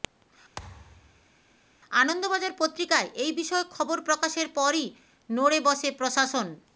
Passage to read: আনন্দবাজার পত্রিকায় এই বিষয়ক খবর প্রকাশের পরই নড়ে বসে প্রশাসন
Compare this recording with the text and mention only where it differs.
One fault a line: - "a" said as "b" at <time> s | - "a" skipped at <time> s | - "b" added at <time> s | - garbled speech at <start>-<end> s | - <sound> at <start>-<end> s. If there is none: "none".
- thud at 0.6-1.3 s